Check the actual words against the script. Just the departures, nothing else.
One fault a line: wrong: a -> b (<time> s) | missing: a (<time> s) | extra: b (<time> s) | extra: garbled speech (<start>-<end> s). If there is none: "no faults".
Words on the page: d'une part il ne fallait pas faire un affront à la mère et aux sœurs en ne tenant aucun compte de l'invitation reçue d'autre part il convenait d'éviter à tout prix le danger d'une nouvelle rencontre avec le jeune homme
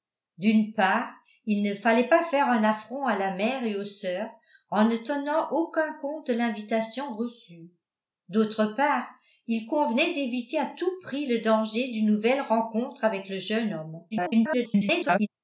extra: garbled speech (14.1-15.3 s)